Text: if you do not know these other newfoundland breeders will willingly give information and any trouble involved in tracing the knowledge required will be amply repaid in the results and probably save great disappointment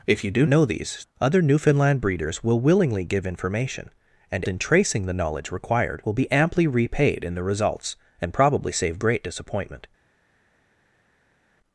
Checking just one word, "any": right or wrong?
wrong